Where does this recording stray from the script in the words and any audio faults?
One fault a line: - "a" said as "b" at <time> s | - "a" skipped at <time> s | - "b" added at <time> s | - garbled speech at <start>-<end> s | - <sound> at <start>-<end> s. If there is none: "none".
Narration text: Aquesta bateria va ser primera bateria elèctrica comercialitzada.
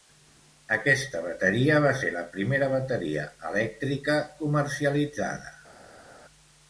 - "la" added at 2.2 s